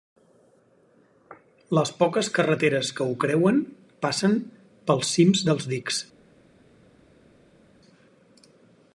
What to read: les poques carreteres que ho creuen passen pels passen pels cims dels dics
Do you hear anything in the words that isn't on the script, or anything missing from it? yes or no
yes